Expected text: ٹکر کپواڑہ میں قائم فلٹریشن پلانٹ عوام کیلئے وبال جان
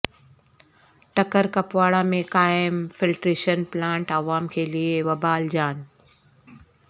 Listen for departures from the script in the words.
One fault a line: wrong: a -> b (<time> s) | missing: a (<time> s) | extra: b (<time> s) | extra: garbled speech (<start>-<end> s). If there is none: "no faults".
no faults